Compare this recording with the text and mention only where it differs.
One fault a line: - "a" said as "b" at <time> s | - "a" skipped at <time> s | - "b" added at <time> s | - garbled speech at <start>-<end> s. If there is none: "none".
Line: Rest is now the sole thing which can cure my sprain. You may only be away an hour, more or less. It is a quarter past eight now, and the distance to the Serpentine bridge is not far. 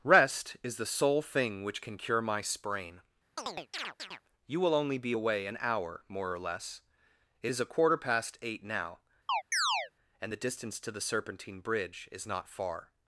- "now" skipped at 0.8 s
- "may" said as "will" at 4.6 s